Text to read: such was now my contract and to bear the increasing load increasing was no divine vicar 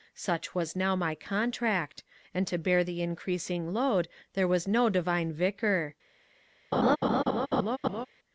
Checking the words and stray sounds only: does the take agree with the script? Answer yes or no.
no